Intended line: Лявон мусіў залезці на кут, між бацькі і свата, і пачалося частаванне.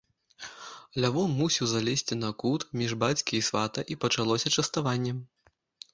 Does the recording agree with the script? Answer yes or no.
yes